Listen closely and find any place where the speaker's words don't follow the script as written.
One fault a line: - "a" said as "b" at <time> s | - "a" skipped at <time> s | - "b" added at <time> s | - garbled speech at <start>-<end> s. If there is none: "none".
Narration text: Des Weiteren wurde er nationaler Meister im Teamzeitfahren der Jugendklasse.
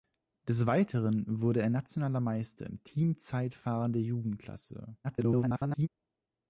- garbled speech at 5.0-5.9 s